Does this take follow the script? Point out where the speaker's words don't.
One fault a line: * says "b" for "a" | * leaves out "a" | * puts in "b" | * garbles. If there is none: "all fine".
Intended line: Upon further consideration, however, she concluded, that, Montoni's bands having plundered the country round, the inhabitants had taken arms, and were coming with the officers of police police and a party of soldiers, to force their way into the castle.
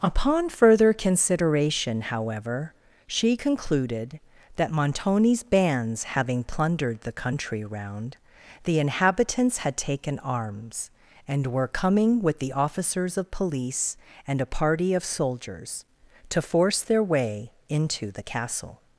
* leaves out "police"